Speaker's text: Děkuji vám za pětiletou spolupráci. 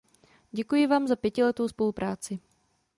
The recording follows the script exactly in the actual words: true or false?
true